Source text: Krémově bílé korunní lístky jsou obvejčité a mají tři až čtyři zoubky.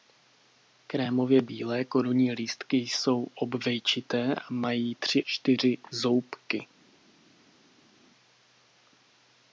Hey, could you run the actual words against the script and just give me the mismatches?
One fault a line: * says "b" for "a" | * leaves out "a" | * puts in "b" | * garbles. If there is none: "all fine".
* leaves out "až"